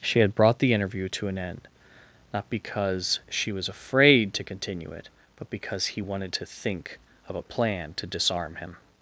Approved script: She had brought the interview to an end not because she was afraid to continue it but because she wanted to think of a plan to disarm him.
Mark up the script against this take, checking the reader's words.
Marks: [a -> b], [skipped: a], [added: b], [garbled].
She had brought the interview to an end not because she was afraid to continue it but because [she -> he] wanted to think of a plan to disarm him.